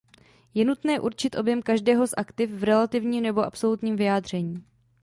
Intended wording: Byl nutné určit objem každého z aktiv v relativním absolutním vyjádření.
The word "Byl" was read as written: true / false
false